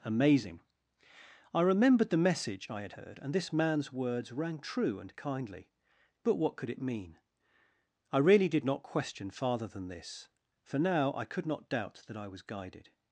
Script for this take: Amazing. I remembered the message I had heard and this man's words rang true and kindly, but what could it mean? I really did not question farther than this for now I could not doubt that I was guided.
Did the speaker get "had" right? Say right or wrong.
right